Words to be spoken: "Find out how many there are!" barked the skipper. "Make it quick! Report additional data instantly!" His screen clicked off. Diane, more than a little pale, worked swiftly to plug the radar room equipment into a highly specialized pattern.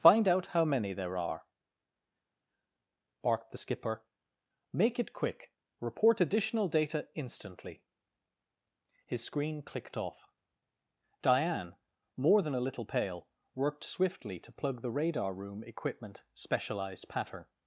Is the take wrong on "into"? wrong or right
wrong